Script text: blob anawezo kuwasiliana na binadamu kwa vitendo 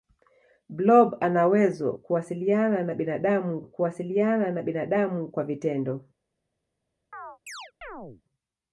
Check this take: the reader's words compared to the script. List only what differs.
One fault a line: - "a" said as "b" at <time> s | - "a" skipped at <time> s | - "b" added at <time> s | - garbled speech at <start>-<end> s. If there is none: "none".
- "kuwasiliana na binadamu" added at 3.6 s